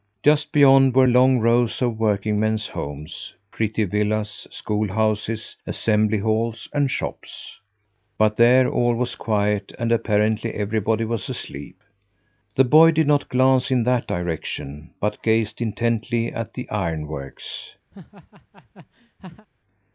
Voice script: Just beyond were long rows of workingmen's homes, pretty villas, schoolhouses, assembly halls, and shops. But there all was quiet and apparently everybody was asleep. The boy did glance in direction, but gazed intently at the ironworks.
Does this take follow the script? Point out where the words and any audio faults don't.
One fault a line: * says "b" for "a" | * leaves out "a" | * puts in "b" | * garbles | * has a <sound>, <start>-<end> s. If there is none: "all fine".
* puts in "not"
* puts in "that"
* has a laugh, 17.9-19.5 s